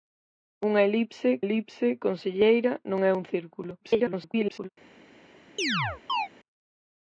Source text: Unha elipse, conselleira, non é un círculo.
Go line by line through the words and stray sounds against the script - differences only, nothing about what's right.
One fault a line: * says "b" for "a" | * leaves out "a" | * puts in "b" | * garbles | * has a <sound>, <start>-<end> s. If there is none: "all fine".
* puts in "elipse"
* garbles
* has a chirp, 5.6-6.3 s